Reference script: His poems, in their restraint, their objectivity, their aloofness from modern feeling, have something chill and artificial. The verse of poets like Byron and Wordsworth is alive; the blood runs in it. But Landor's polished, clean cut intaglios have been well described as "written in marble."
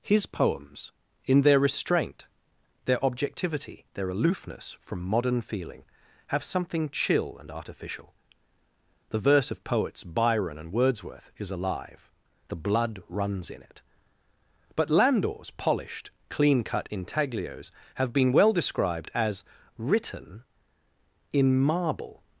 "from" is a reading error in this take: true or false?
false